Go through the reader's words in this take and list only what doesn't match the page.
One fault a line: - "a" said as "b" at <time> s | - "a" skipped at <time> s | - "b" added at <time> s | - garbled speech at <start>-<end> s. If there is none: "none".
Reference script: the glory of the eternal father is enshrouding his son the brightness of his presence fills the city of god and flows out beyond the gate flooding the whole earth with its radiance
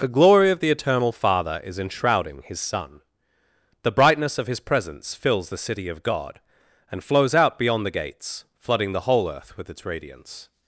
- "gate" said as "gates" at 7.9 s